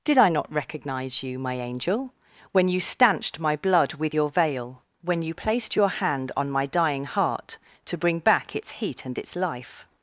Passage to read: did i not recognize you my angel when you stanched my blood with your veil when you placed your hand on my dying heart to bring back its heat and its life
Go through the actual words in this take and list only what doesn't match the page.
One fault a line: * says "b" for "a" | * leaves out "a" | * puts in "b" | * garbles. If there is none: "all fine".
all fine